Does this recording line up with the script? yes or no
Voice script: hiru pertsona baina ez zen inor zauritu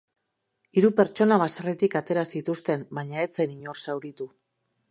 no